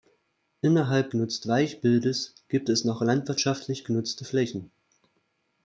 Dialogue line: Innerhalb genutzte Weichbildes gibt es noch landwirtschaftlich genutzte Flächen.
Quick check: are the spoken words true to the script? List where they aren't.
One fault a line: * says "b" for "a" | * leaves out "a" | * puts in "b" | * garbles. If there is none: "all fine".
all fine